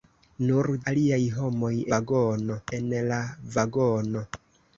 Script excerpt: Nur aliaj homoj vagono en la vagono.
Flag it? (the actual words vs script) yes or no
no